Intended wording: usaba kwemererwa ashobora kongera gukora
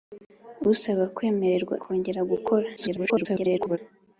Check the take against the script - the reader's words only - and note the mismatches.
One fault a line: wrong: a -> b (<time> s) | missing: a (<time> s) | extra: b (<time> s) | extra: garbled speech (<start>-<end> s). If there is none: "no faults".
missing: ashobora (1.8 s)
extra: garbled speech (2.8-3.8 s)